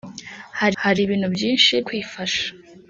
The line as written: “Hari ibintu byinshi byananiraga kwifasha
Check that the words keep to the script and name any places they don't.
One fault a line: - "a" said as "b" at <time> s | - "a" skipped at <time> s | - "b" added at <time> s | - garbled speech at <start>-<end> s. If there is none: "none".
- "hari" added at 0.8 s
- "byananiraga" skipped at 1.7 s